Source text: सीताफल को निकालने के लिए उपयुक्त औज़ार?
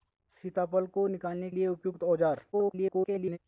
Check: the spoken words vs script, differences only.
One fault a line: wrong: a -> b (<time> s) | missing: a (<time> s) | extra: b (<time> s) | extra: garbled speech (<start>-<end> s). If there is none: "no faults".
missing: के (1.5 s)
extra: garbled speech (2.5-3.4 s)